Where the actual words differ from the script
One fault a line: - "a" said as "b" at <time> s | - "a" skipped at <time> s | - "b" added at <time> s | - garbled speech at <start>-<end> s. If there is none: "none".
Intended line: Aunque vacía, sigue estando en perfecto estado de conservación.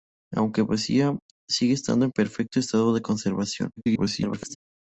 - garbled speech at 3.8-4.6 s